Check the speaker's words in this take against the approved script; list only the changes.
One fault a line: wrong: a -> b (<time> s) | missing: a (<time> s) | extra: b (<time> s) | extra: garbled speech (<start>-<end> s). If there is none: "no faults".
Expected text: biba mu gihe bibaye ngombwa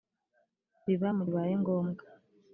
missing: gihe (1.2 s)